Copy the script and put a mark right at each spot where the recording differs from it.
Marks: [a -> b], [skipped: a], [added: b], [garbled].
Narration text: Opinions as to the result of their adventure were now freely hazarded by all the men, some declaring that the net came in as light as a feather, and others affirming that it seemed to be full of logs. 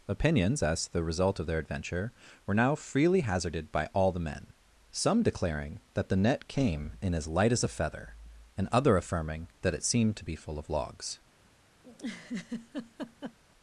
Opinions as to the result of their adventure were now freely hazarded by all the men, some declaring that the net came in as light as a feather, and [others -> other] affirming that it seemed to be full of logs.